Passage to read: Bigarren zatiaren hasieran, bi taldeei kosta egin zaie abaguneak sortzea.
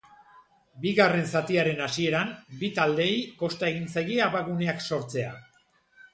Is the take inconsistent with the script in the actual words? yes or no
no